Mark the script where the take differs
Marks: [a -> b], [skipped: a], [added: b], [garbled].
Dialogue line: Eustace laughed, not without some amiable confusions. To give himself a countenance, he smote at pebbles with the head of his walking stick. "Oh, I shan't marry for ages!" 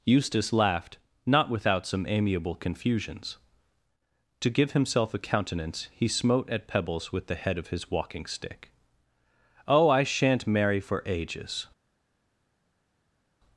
Eustace laughed, not without some amiable confusions. To give himself a countenance, he smote at pebbles with the head of his walking stick. "Oh, I shan't marry for ages!"